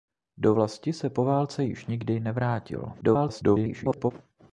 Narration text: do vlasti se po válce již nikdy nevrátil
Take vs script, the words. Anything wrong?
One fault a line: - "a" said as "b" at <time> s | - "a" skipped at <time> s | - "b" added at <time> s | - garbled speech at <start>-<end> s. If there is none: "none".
- garbled speech at 3.0-4.1 s